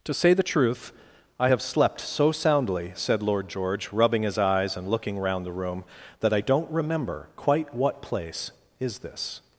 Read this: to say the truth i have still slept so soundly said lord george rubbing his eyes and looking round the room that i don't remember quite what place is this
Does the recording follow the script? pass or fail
fail